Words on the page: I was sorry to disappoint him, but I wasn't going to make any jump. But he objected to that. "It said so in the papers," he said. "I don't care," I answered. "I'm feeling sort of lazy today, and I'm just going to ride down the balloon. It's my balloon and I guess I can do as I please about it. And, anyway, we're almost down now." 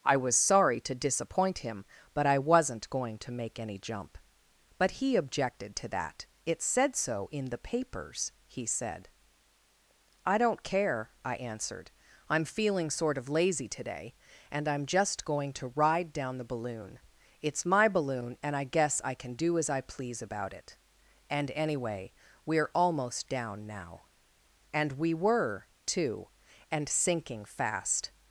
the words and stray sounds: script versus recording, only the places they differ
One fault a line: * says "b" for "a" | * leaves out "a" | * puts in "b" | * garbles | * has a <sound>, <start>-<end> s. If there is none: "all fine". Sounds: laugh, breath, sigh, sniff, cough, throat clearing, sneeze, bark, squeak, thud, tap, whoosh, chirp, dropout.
* puts in "And we were too and sinking fast"